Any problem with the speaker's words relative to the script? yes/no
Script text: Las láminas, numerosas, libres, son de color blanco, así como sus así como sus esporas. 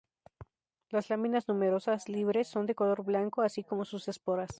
yes